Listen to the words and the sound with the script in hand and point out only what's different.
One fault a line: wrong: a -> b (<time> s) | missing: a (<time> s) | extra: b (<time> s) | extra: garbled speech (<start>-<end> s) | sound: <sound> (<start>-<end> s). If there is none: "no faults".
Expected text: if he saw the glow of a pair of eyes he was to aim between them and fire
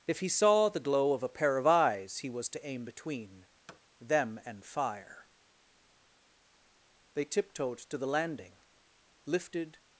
sound: thud (3.7-3.8 s)
extra: they tiptoed to the landing lifted (7.1 s)